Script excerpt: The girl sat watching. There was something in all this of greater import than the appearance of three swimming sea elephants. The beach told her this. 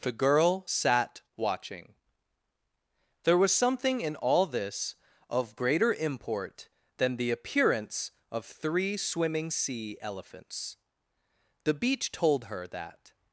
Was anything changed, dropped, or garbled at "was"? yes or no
no